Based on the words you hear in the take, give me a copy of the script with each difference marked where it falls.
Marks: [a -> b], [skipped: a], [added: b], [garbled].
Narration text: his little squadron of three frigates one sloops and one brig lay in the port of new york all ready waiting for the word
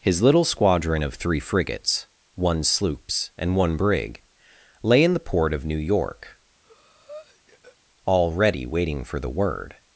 his little squadron of three frigates one sloops and one brig lay in the port of new york all ready waiting for the word